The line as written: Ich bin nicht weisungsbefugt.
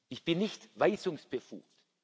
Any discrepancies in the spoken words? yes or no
no